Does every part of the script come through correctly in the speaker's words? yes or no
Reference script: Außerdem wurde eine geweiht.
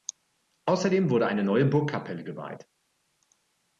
no